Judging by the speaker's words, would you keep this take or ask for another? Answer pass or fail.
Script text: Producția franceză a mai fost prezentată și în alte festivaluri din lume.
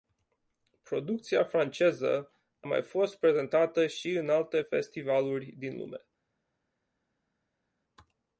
pass